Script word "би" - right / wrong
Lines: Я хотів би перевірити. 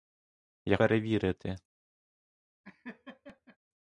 wrong